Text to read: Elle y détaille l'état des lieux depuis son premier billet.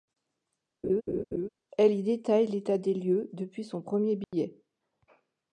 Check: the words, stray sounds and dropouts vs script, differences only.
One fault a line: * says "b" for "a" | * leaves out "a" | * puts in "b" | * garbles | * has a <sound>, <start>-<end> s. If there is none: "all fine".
* has a laugh, 0.8-1.5 s
* has a dropout, 4.2-4.3 s